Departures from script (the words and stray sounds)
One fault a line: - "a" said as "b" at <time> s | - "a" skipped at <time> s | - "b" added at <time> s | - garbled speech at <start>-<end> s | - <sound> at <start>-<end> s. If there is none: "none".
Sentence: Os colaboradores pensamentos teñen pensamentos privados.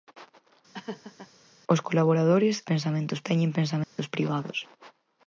- laugh at 0.7-1.3 s
- dropout at 3.8-4.0 s